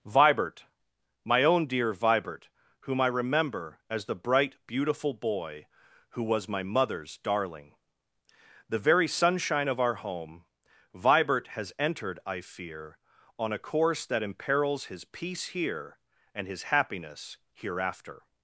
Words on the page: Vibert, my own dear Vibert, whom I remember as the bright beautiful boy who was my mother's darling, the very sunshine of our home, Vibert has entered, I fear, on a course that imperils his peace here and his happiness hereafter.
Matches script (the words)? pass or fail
pass